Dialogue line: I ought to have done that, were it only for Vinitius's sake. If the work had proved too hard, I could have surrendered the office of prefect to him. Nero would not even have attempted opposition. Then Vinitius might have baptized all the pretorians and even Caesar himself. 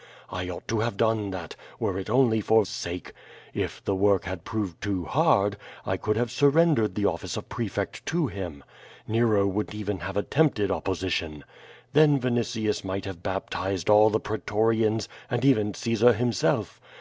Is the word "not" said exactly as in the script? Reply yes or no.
no